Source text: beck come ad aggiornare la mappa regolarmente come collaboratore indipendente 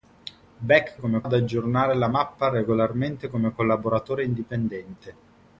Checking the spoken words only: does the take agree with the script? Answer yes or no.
yes